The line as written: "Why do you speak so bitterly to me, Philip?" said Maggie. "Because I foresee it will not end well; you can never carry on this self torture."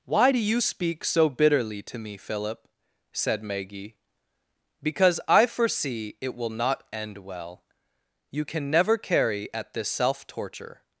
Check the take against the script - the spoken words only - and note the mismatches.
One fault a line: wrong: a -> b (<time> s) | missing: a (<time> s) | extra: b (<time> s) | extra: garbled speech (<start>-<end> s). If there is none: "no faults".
wrong: on -> at (9.5 s)